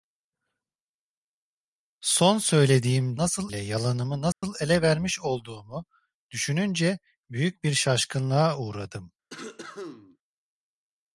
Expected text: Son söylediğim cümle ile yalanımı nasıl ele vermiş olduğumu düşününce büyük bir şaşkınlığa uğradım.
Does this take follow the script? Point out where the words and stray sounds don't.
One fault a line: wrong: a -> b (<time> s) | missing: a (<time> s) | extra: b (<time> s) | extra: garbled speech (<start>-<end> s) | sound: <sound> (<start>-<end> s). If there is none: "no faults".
wrong: cümle -> nasıl (3.2 s)
sound: dropout (4.3-4.4 s)
sound: cough (9.3-10.2 s)